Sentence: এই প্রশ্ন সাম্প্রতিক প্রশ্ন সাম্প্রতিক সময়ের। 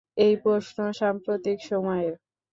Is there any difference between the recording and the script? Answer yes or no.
yes